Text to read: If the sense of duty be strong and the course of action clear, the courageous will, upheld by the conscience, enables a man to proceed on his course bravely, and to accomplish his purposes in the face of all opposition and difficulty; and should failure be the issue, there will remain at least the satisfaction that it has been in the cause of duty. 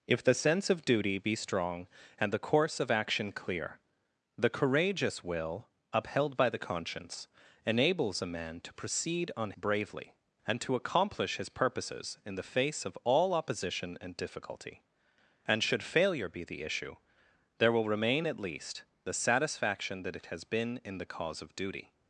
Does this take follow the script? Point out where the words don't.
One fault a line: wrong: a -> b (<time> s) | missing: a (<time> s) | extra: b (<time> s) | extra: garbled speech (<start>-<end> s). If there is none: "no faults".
missing: his course (9.5 s)